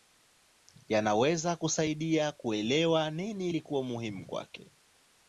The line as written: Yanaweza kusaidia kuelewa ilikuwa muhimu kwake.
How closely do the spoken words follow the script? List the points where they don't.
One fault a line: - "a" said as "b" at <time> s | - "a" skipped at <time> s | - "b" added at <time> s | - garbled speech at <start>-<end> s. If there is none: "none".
- "nini" added at 3.1 s